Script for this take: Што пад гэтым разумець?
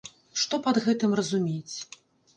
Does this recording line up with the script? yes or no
yes